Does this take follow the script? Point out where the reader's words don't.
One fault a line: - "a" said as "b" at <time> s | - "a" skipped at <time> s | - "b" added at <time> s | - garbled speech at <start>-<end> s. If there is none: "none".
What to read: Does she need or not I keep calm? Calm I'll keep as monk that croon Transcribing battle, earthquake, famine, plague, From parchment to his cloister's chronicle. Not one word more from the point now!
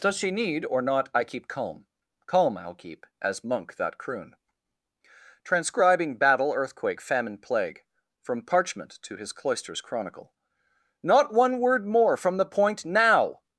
none